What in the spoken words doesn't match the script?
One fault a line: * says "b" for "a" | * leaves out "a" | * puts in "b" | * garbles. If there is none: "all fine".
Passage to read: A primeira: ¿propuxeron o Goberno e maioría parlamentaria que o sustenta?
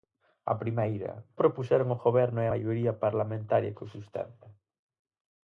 all fine